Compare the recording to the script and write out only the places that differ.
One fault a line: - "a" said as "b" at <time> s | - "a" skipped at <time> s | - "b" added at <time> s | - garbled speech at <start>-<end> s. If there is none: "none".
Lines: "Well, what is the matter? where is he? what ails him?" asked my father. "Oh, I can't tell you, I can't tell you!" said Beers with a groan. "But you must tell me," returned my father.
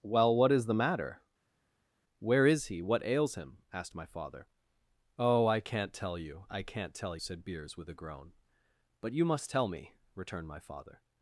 - "you" skipped at 7.2 s